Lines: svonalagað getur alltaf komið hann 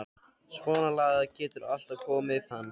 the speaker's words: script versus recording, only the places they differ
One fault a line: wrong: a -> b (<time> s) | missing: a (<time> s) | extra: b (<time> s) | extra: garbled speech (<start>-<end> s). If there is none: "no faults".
no faults